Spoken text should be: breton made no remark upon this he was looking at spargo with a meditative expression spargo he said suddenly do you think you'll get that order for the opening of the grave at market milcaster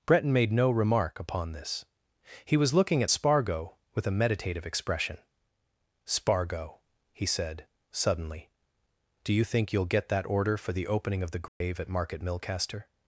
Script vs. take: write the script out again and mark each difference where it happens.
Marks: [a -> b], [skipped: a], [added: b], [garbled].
breton made no remark upon this he was looking at spargo with a meditative expression spargo he said suddenly do you think you'll get that order for the opening of the grave at market milcaster